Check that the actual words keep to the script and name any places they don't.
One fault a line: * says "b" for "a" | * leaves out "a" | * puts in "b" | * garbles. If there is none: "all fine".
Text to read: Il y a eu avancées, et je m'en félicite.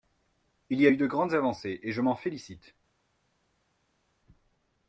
* puts in "de grandes"